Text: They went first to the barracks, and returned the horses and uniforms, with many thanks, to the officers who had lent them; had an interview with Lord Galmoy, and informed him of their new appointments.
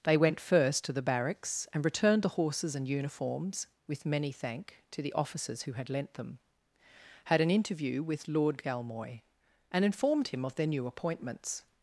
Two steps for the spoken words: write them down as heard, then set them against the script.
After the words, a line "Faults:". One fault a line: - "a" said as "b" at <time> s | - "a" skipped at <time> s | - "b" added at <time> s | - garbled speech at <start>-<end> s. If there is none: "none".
They went first to the barracks, and returned the horses and uniforms, with many thank, to the officers who had lent them; had an interview with Lord Galmoy, and informed him of their new appointments.
Faults:
- "thanks" said as "thank" at 4.3 s